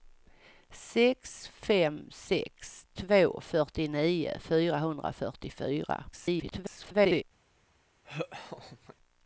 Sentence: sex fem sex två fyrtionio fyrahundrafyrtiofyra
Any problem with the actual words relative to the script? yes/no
yes